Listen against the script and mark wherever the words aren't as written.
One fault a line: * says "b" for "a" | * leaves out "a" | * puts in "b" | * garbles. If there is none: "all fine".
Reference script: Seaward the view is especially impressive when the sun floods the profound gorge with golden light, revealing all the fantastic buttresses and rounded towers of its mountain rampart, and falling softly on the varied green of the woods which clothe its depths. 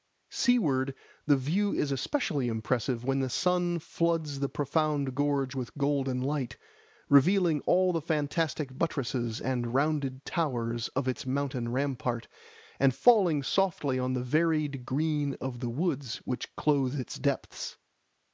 all fine